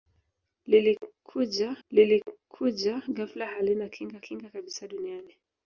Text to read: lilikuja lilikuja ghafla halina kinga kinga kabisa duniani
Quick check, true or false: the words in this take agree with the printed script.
true